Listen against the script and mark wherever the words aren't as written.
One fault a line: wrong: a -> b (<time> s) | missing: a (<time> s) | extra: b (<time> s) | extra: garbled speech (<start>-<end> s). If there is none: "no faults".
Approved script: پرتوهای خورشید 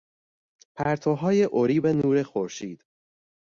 extra: اریب نور (1.5 s)